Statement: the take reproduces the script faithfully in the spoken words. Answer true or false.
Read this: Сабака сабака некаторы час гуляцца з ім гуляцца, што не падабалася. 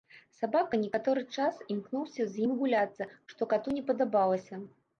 false